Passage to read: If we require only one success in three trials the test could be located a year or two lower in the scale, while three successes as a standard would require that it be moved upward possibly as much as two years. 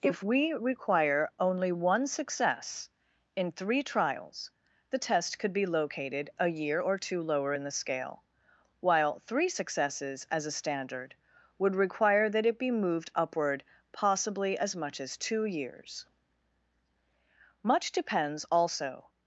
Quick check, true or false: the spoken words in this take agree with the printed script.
false